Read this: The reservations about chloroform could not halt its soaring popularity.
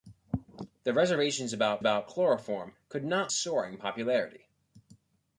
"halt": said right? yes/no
no